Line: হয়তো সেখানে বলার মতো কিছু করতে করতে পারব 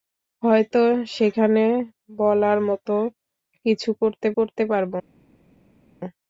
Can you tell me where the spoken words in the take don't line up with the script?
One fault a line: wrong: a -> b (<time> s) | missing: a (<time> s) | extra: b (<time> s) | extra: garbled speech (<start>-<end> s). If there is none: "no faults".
no faults